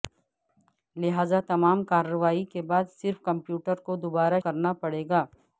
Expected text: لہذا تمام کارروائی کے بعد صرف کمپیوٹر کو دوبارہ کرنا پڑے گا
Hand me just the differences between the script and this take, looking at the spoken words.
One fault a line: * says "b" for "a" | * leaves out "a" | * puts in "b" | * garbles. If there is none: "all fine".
all fine